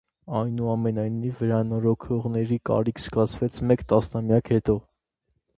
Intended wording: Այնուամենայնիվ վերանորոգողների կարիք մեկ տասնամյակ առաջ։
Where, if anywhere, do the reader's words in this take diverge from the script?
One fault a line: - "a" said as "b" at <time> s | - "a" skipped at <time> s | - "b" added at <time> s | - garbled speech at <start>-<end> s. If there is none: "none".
- "զգացվեց" added at 3.0 s
- "առաջ" said as "հետո" at 4.6 s